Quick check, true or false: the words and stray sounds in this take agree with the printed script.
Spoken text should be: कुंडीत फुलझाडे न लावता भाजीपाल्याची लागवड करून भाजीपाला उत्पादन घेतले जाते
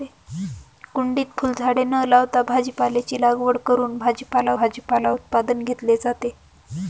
false